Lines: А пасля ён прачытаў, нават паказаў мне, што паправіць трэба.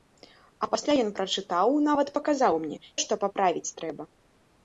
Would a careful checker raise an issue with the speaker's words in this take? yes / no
no